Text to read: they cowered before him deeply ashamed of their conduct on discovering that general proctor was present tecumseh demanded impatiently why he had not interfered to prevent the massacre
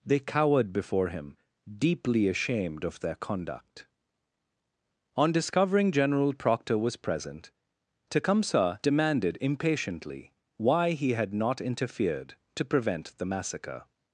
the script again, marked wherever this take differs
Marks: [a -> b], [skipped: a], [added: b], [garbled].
they cowered before him deeply ashamed of their conduct on discovering [skipped: that] general proctor was present tecumseh demanded impatiently why he had not interfered to prevent the massacre